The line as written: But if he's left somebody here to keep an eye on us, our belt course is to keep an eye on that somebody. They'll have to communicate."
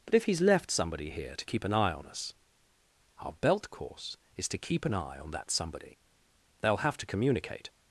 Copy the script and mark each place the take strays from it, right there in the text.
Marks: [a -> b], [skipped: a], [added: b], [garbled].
But if he's left somebody here to keep an eye on us, our belt course is to keep an eye on that somebody. They'll have to communicate."